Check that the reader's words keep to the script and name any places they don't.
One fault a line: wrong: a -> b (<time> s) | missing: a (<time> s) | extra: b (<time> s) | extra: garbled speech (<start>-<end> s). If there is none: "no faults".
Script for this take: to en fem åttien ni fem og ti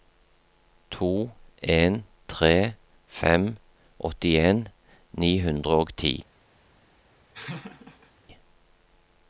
extra: tre (2.3 s)
wrong: fem -> hundre (5.5 s)